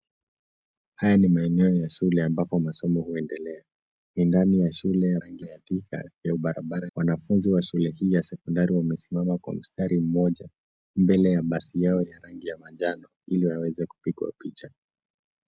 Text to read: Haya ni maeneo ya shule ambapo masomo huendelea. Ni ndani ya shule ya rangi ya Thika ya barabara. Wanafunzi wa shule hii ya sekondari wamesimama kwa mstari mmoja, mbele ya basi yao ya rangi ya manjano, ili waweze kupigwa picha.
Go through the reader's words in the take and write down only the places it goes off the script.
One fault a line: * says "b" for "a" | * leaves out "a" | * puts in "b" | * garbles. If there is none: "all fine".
all fine